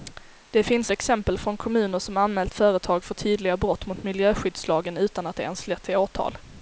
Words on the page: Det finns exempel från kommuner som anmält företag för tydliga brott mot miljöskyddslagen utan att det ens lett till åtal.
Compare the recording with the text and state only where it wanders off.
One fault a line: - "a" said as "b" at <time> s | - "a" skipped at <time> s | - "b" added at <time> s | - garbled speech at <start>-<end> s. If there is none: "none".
none